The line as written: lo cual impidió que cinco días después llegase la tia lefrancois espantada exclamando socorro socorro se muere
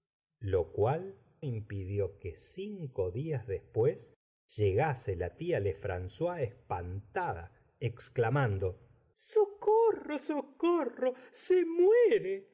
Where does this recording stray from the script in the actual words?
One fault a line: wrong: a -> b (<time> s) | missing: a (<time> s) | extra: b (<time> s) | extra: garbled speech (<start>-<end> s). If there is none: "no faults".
no faults